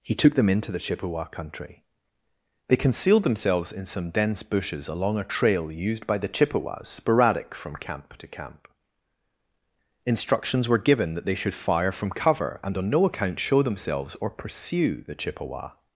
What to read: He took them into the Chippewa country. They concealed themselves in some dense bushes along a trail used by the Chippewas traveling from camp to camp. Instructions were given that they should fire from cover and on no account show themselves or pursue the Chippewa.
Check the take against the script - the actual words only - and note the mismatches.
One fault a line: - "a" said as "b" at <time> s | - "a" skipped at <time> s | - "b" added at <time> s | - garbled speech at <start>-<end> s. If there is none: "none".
- "traveling" said as "sporadic" at 6.9 s